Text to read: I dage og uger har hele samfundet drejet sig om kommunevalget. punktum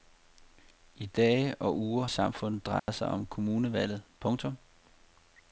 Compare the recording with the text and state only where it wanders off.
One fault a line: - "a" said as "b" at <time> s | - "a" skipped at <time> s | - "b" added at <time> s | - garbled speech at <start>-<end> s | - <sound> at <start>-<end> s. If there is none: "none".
- "har hele" skipped at 2.0 s
- dropout at 2.8-2.9 s